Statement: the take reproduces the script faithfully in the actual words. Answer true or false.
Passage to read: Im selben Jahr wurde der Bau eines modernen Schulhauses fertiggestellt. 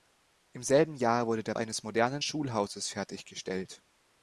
false